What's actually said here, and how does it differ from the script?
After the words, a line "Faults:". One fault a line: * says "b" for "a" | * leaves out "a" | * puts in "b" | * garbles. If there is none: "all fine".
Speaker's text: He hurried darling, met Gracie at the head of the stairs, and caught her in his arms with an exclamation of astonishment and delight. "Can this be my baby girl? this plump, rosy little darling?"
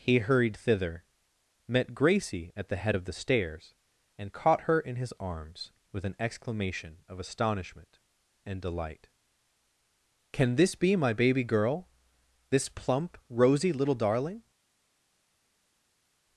He hurried thither, met Gracie at the head of the stairs, and caught her in his arms with an exclamation of astonishment and delight. "Can this be my baby girl? this plump, rosy little darling?"
Faults:
* says "thither" for "darling"